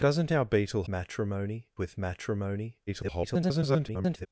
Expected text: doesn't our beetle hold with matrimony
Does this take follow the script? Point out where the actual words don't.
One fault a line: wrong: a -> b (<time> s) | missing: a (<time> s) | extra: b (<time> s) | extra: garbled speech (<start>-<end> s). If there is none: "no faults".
wrong: hold -> matrimony (0.9 s)
extra: garbled speech (2.9-4.3 s)